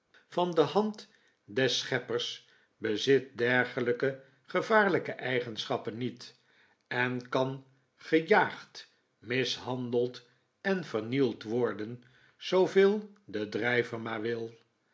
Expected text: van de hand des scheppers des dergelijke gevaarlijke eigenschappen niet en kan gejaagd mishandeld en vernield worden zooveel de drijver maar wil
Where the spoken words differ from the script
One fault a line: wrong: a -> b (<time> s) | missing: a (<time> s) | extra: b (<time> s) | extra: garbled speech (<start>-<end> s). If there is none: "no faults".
wrong: des -> bezit (2.8 s)